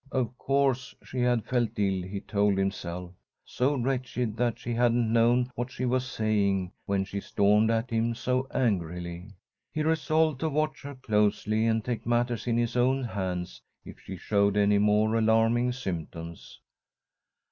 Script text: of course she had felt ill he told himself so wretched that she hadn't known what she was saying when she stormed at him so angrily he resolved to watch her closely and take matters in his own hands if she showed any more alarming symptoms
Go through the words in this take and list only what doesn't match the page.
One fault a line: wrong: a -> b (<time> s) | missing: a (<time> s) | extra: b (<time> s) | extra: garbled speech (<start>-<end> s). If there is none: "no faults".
no faults